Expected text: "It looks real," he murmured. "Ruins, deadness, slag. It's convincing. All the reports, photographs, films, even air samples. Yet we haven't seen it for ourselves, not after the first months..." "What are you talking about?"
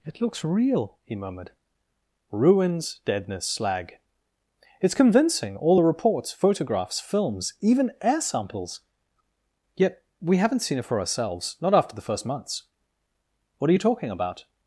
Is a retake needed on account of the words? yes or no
no